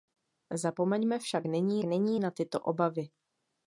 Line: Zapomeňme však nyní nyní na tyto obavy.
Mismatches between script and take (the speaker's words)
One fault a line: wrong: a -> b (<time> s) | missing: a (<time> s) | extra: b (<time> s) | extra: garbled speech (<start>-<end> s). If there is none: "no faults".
no faults